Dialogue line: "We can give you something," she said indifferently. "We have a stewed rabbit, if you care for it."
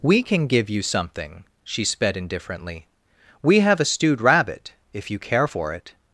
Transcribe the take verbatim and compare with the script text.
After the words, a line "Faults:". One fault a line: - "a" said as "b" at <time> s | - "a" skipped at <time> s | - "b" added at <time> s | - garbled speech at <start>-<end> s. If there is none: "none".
"We can give you something," she sped indifferently. "We have a stewed rabbit, if you care for it."
Faults:
- "said" said as "sped" at 1.9 s